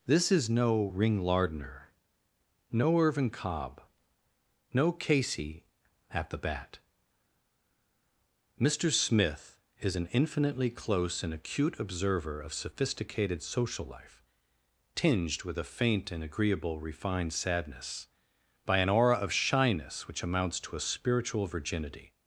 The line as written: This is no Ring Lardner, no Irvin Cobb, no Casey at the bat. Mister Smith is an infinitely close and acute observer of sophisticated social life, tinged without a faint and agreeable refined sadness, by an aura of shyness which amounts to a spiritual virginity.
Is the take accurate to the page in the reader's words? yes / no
no